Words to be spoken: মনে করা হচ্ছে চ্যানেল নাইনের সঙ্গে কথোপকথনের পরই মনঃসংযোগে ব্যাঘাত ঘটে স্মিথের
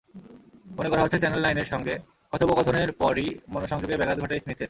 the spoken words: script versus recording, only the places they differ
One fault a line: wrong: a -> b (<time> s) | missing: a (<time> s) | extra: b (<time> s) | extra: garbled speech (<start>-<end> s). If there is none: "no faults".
no faults